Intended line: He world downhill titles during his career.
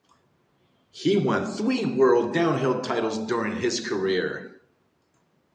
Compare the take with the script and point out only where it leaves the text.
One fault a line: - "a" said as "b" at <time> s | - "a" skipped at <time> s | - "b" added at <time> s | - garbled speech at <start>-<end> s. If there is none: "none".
- "won three" added at 1.1 s